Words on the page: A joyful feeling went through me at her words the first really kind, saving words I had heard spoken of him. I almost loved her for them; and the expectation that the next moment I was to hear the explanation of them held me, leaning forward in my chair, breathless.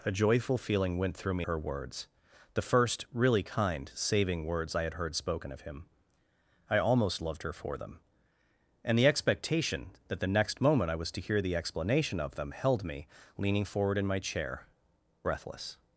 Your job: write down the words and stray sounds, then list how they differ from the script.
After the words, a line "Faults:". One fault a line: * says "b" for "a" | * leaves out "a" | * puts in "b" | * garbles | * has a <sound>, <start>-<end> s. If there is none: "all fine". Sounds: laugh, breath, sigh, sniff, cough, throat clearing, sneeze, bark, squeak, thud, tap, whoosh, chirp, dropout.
A joyful feeling went through me her words the first really kind, saving words I had heard spoken of him. I almost loved her for them; and the expectation that the next moment I was to hear the explanation of them held me, leaning forward in my chair, breathless.
Faults:
* leaves out "at"